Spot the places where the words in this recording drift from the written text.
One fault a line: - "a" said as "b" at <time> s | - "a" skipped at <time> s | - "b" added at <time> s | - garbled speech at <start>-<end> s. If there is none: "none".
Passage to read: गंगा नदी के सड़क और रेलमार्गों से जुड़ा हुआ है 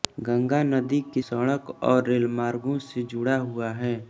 none